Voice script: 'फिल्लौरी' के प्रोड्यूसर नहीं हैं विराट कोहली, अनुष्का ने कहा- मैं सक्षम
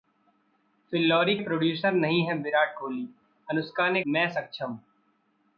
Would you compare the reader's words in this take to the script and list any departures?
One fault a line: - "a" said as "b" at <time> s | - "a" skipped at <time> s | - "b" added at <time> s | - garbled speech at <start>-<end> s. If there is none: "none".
- "के" skipped at 1.4 s
- "कहा" skipped at 4.0 s